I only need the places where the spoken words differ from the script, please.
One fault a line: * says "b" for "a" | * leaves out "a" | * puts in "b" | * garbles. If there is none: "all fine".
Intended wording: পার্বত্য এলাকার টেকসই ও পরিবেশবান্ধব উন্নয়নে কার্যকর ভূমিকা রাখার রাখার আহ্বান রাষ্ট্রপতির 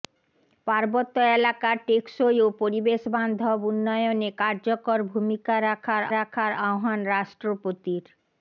all fine